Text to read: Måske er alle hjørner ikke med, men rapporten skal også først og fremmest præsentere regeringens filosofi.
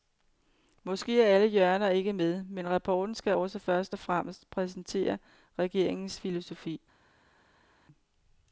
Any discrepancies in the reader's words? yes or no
no